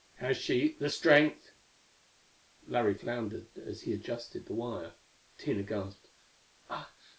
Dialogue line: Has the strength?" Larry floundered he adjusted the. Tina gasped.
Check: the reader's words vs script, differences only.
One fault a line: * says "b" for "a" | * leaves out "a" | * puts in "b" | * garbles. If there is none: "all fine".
* puts in "she"
* puts in "as"
* puts in "wire"